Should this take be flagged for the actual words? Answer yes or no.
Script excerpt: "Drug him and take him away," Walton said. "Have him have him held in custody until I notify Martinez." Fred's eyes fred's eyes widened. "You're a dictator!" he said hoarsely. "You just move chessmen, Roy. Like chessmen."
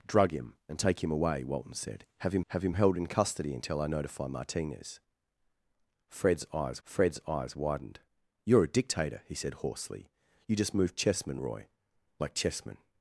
no